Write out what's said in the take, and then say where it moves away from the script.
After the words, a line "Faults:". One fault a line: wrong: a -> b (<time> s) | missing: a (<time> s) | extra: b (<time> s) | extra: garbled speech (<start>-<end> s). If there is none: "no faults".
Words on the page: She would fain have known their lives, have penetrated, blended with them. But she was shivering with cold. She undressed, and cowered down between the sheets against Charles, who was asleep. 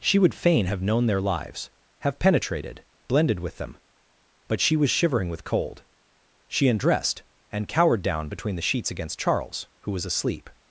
She would fain have known their lives, have penetrated, blended with them. But she was shivering with cold. She undressed, and cowered down between the sheets against Charles, who was asleep.
Faults:
no faults